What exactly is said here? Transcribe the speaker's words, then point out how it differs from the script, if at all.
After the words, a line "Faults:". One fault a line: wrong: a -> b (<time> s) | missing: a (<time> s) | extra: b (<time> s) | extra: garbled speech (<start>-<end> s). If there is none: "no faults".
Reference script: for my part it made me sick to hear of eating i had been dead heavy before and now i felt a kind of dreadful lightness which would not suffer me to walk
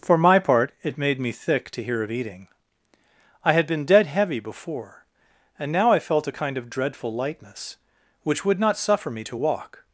for my part it made me thick to hear of eating i had been dead heavy before and now i felt a kind of dreadful lightness which would not suffer me to walk
Faults:
wrong: sick -> thick (1.3 s)